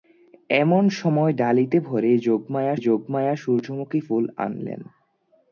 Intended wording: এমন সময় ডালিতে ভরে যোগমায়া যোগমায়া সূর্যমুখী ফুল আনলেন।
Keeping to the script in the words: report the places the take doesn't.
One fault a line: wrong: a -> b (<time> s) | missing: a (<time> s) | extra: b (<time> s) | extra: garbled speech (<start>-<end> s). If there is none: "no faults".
no faults